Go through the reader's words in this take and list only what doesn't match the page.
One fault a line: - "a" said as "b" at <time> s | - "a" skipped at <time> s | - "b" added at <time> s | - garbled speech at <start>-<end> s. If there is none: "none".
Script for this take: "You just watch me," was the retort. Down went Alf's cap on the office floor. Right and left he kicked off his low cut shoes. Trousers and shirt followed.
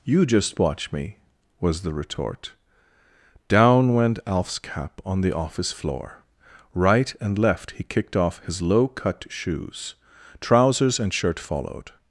none